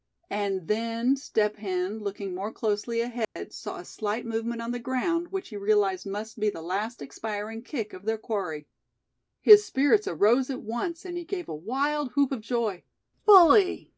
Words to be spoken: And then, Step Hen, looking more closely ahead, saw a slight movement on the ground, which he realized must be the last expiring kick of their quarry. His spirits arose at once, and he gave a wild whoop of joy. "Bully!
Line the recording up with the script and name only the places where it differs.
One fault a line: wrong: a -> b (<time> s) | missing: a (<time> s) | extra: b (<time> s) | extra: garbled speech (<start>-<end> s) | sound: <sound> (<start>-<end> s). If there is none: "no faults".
sound: dropout (3.2-3.4 s)